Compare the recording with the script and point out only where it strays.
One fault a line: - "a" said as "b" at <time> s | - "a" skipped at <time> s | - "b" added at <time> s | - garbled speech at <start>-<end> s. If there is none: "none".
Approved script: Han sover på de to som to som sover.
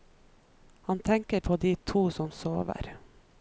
- "sover" said as "tenker" at 1.0 s
- "to som" skipped at 2.3 s